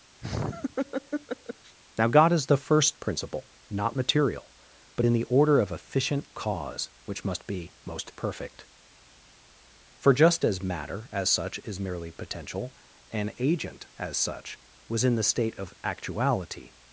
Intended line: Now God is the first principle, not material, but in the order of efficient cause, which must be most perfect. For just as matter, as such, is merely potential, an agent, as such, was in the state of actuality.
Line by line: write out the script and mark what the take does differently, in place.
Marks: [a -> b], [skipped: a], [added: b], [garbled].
Now God is the first principle, not material, but in the order of efficient cause, which must be most perfect. For just as matter, as such, is merely potential, an agent, as such, was in the state of actuality.